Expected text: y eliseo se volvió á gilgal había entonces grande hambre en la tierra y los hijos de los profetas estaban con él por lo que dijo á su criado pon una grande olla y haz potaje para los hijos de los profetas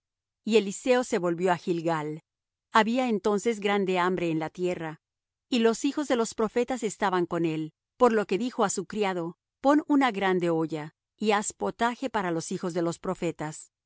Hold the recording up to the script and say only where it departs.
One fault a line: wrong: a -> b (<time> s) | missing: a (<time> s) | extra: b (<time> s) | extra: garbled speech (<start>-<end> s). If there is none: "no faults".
no faults